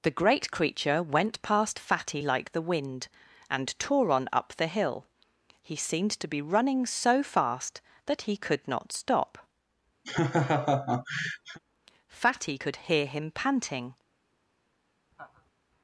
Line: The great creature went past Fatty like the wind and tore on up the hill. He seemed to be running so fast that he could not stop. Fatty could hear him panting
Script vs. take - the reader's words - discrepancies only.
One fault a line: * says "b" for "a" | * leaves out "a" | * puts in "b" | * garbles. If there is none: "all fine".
all fine